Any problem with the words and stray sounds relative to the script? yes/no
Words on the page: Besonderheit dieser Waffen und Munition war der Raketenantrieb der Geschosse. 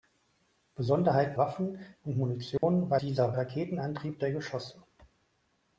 yes